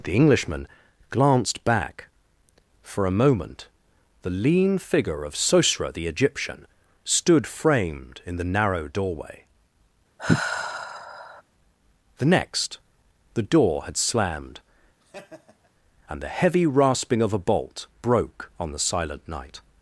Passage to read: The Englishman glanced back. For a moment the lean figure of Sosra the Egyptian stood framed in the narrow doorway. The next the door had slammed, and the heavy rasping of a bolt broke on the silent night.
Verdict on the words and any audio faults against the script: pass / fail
fail